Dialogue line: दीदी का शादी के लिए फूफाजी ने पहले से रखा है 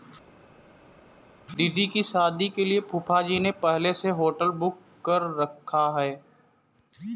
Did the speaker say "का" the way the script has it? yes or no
no